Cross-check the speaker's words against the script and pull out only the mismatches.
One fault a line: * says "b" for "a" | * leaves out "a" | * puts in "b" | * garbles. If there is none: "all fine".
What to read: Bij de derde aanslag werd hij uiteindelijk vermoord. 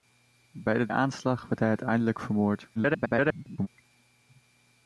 * leaves out "derde"
* garbles